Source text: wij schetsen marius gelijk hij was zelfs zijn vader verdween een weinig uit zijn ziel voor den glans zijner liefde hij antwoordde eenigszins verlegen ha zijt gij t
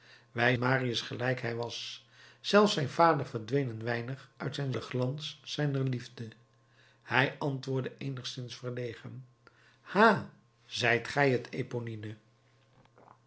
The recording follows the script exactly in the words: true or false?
false